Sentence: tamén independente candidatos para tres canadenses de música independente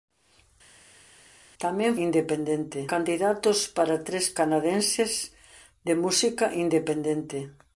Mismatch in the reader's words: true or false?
false